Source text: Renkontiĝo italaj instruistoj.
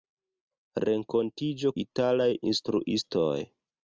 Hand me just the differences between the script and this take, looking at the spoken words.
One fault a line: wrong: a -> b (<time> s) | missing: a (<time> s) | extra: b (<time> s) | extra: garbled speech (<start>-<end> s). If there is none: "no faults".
no faults